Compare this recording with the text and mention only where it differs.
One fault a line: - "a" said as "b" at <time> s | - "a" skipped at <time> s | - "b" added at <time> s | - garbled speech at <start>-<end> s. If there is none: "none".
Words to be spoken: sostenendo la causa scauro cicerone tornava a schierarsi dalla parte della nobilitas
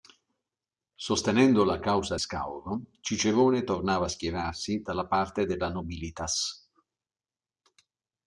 none